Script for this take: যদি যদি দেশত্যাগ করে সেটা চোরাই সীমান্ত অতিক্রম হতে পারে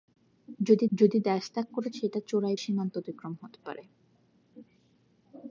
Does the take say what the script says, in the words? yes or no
yes